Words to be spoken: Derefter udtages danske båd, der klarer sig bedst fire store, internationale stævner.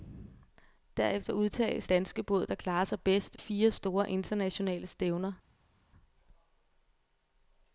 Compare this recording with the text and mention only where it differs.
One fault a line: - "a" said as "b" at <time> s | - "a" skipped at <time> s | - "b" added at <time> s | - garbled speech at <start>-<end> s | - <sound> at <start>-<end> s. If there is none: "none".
none